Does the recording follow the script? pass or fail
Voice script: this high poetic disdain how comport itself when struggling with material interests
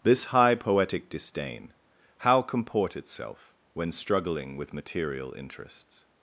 pass